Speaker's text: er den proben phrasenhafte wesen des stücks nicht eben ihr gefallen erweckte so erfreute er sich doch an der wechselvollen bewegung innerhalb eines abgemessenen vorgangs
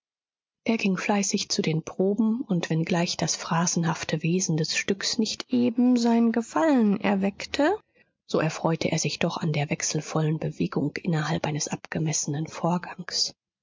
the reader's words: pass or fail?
fail